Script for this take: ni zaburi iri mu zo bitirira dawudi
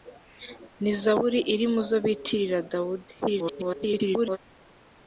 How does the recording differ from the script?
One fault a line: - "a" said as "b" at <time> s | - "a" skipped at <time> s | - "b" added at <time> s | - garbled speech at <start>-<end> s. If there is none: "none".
- garbled speech at 3.2-4.4 s